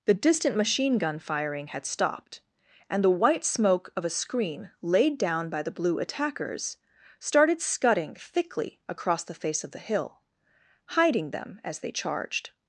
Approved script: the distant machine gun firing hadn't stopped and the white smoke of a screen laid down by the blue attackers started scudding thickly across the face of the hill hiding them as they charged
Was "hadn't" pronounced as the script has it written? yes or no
no